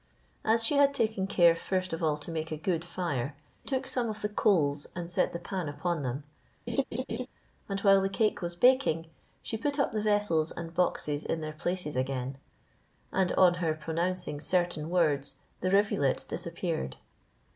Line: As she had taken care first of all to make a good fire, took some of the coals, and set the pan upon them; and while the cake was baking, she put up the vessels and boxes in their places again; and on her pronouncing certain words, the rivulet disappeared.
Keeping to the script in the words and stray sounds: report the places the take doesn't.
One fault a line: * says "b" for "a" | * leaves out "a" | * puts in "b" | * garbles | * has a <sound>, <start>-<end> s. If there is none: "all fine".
* has a laugh, 6.7-7.3 s